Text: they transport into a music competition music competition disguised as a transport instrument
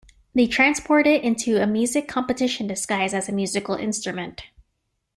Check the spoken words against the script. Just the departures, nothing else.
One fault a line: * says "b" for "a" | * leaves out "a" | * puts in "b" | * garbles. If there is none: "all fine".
* puts in "it"
* leaves out "music competition"
* says "musical" for "transport"